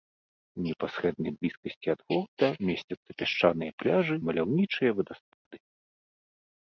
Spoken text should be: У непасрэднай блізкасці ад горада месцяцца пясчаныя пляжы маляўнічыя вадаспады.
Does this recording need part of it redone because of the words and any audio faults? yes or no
yes